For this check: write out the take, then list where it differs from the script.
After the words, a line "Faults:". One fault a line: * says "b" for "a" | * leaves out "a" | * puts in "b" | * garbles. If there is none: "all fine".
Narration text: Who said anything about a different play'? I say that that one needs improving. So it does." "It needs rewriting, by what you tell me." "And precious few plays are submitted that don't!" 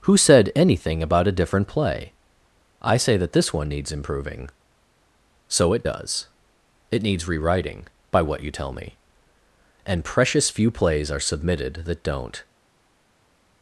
Who said anything about a different play'? I say that this one needs improving. So it does." "It needs rewriting, by what you tell me." "And precious few plays are submitted that don't!"
Faults:
* says "this" for "that"